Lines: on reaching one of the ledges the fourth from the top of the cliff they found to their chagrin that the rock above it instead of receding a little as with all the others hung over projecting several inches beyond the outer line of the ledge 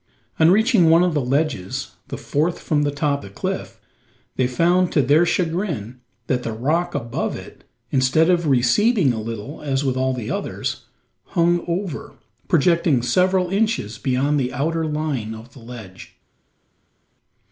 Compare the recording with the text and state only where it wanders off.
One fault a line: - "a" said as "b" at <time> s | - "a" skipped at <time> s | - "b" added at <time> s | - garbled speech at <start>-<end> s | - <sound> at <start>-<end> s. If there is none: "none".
- "of" skipped at 3.2 s